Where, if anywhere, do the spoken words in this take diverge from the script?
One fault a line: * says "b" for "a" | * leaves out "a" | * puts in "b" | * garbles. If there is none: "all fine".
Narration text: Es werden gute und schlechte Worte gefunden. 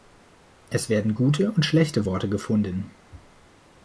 all fine